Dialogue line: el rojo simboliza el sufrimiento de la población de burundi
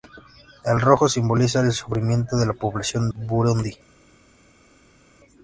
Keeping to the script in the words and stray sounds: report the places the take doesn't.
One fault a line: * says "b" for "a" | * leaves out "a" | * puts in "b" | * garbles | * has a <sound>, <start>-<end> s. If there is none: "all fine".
* leaves out "de"